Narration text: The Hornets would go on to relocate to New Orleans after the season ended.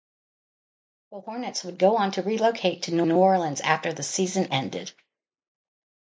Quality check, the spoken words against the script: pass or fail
fail